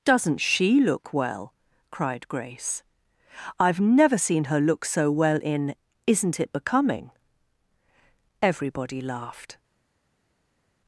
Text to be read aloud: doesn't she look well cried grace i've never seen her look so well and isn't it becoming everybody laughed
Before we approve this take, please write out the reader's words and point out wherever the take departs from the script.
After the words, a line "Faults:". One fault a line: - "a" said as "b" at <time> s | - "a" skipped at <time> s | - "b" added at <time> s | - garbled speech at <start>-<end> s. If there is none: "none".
doesn't she look well cried grace i've never seen her look so well in isn't it becoming everybody laughed
Faults:
- "and" said as "in" at 5.4 s